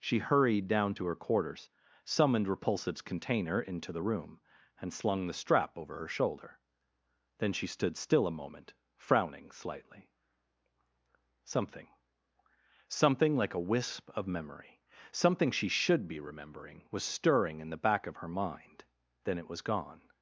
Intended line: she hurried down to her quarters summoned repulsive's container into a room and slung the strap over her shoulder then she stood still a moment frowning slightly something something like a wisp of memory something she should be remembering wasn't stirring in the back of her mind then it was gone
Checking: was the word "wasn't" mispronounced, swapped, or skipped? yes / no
yes